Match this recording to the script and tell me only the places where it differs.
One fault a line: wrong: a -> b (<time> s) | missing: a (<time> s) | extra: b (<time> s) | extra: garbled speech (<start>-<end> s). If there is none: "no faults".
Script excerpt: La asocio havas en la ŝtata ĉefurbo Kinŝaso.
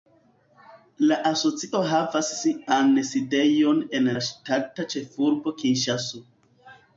extra: sian sidejon (2.4 s)